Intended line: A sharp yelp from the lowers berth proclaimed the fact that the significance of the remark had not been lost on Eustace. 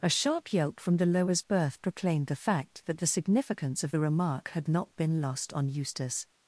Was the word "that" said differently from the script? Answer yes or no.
no